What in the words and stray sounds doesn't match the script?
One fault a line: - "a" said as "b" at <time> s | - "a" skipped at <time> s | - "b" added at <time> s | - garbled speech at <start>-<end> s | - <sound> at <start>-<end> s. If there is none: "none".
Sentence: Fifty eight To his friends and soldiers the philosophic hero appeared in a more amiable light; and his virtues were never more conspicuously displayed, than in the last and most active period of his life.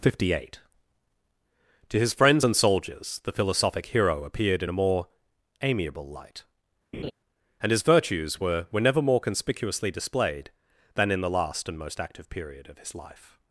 - laugh at 6.9-7.1 s
- "were" added at 8.7 s